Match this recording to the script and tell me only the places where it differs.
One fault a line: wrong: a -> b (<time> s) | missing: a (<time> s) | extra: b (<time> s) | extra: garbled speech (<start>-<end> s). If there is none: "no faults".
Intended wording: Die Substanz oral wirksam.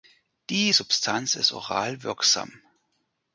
extra: ist (1.4 s)